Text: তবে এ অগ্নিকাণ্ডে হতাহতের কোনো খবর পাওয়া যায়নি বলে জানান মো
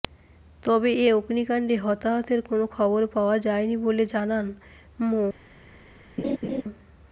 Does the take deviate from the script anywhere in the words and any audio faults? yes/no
yes